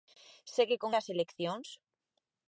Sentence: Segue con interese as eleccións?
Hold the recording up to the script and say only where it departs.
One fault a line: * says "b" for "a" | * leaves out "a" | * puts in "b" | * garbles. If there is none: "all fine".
* leaves out "interese"